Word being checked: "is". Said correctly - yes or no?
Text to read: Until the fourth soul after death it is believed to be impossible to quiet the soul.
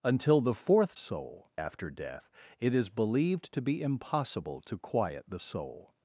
yes